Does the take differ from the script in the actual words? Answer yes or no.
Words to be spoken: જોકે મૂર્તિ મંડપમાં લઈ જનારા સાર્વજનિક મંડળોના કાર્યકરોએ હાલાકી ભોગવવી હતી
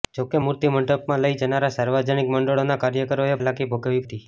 no